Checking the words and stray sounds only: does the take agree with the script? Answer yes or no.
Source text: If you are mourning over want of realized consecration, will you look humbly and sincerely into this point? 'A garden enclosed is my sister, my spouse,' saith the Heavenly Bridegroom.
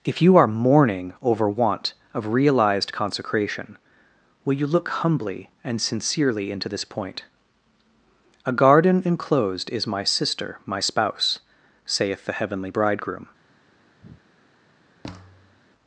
no